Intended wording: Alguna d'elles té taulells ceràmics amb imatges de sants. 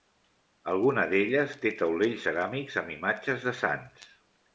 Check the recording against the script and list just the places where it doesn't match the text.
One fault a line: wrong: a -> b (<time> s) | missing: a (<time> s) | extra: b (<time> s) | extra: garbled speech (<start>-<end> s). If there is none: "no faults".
no faults